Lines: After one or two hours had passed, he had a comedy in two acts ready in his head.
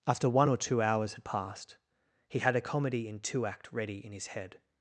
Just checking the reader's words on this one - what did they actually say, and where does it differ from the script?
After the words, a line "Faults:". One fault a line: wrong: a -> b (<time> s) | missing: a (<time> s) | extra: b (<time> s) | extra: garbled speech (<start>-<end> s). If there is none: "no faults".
After one or two hours had passed, he had a comedy in two act ready in his head.
Faults:
wrong: acts -> act (3.4 s)